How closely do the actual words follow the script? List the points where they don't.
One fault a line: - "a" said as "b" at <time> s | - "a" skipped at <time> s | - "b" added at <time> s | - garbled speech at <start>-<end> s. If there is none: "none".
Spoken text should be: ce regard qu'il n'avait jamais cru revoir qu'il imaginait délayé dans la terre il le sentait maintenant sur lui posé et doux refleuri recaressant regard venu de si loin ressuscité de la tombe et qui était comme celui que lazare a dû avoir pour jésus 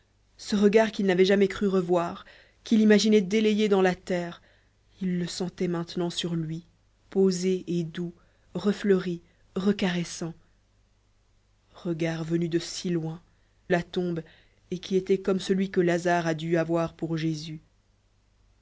- "ressuscité de" skipped at 13.2 s